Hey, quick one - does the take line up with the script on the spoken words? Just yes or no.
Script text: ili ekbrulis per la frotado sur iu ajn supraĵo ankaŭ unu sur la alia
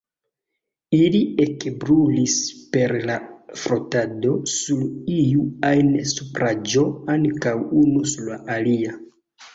yes